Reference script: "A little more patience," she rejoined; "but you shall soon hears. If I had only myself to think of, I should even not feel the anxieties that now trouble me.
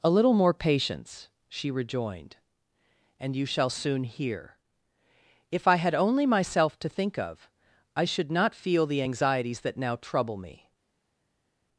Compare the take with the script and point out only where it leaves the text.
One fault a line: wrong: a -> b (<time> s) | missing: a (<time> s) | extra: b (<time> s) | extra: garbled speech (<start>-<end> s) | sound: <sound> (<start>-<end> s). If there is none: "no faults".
wrong: but -> and (3.2 s)
wrong: hears -> hear (4.0 s)
missing: even (8.3 s)